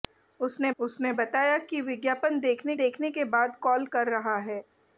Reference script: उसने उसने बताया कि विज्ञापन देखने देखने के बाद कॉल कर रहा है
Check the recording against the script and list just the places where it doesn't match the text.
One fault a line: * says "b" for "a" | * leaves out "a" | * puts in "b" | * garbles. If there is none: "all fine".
all fine